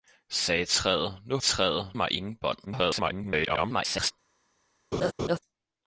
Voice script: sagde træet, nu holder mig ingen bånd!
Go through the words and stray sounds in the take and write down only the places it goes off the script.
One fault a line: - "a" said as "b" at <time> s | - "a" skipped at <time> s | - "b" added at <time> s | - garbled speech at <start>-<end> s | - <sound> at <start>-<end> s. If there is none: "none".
- "holder" said as "træet" at 1.4 s
- garbled speech at 2.7-4.1 s
- laugh at 4.9-5.4 s